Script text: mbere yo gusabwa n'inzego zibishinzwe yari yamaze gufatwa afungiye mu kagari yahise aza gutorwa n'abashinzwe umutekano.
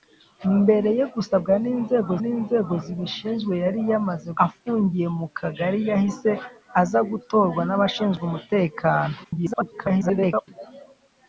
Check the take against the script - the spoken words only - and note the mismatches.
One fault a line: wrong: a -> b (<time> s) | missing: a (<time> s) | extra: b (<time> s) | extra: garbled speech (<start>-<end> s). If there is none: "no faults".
extra: n'inzego (2.2 s)
missing: gufatwa (4.3 s)
extra: garbled speech (9.2-10.5 s)